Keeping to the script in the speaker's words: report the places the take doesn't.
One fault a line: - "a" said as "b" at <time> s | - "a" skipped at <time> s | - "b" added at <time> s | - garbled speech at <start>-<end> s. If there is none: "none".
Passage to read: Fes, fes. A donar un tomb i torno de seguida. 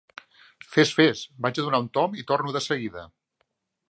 - "Vaig" added at 1.4 s